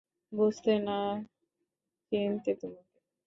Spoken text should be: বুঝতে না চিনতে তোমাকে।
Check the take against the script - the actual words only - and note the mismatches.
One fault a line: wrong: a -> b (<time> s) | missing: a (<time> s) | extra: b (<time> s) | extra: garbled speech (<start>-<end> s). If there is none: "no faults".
no faults